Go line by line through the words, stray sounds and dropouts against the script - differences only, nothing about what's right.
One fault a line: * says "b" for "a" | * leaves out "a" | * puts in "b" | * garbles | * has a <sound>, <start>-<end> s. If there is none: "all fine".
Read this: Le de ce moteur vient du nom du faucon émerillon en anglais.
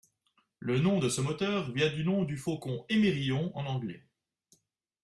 * puts in "nom"